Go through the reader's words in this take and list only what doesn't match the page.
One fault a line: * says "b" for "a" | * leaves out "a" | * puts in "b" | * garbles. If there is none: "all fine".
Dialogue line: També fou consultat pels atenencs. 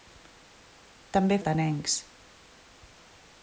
* leaves out "fou consultat pels"